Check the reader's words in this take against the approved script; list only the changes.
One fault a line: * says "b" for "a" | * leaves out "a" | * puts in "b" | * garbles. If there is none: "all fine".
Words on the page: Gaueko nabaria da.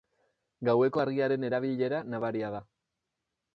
* puts in "argiaren erabilera"